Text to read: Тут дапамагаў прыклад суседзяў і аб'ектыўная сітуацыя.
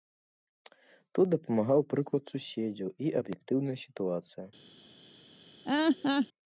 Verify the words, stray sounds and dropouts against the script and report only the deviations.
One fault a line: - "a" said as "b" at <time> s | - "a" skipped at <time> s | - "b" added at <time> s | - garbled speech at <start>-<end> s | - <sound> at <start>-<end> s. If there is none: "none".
- laugh at 5.6-6.3 s